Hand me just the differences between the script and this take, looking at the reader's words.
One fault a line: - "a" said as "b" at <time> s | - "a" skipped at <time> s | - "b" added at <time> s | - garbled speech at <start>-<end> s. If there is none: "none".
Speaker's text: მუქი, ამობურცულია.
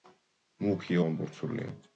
none